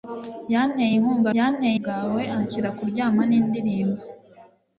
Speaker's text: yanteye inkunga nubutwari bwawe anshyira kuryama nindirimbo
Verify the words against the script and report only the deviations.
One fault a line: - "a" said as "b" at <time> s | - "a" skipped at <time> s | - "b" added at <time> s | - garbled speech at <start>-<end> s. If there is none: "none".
- "nubutwari" said as "yanteye" at 1.4 s